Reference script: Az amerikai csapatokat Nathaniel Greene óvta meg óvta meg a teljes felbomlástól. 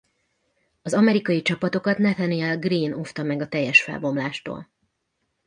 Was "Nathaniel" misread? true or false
false